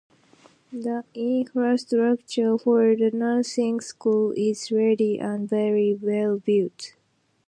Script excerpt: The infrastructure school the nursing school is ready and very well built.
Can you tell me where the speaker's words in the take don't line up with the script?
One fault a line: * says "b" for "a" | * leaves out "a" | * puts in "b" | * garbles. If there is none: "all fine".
* says "for" for "school"